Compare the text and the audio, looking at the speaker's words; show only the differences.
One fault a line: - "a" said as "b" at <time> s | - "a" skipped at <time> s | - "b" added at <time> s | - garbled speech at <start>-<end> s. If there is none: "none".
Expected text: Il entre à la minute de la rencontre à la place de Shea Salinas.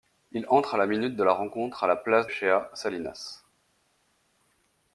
- "de" skipped at 2.3 s